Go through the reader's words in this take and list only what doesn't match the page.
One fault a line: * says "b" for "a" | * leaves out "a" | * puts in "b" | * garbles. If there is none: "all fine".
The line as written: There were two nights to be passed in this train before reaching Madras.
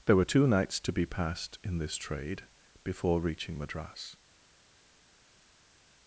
* says "trade" for "train"